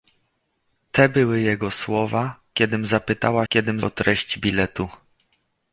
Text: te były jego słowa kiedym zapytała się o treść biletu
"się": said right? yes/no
no